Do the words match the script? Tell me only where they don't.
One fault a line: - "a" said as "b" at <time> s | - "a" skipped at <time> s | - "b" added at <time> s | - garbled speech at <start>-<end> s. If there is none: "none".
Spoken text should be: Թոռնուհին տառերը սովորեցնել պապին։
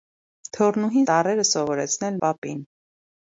none